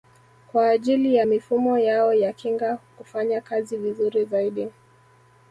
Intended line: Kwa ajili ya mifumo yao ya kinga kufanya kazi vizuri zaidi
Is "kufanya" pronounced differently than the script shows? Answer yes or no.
no